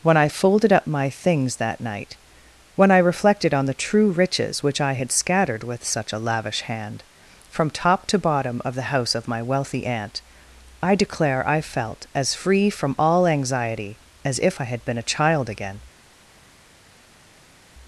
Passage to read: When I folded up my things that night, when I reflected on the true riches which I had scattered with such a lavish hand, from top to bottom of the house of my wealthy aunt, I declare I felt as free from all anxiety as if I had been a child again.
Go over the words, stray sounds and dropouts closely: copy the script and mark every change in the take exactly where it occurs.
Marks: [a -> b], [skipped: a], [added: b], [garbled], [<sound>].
When I folded up my things that night, when I reflected on the true riches which I had scattered with such a lavish hand, from top to bottom of the house of my wealthy aunt, I declare I felt as free from all anxiety as if I had been a child again.